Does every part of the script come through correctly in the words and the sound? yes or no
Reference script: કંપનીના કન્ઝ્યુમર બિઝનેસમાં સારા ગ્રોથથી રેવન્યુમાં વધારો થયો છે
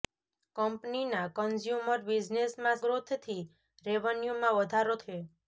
no